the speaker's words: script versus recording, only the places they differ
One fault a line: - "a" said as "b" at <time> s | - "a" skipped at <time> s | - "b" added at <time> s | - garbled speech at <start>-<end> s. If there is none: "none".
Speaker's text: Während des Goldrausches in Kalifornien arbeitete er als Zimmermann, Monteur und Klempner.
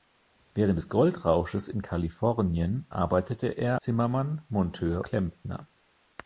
- "als" skipped at 3.8 s
- "und" skipped at 5.0 s